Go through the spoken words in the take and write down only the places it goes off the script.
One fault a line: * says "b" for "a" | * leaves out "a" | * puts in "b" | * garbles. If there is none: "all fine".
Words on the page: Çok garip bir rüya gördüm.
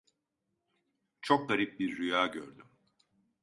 all fine